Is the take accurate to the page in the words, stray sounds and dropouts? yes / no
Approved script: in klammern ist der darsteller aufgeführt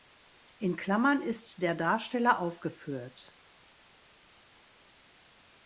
yes